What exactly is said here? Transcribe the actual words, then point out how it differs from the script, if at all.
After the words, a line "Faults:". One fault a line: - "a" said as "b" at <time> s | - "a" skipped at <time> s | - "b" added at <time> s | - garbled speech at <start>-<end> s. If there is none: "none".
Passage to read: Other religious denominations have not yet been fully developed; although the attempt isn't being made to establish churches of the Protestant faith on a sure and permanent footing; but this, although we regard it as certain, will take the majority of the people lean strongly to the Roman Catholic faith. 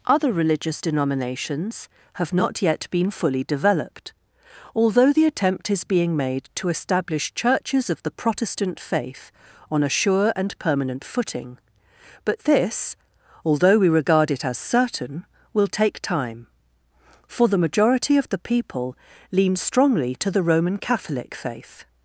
Other religious denominations have not yet been fully developed; although the attempt is being made to establish churches of the Protestant faith on a sure and permanent footing; but this, although we regard it as certain, will take time, for the majority of the people lean strongly to the Roman Catholic faith.
Faults:
- "isn't" said as "is" at 5.7 s
- "time for" added at 16.0 s